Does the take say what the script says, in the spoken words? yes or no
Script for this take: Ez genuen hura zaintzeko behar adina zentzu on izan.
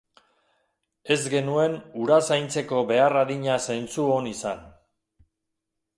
yes